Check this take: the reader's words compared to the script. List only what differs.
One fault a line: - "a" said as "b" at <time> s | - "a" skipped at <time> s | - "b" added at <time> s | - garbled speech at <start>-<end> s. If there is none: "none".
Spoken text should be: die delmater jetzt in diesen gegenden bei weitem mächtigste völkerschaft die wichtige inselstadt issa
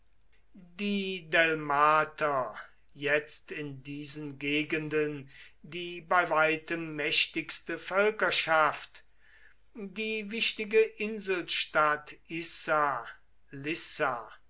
- "die" added at 5.6 s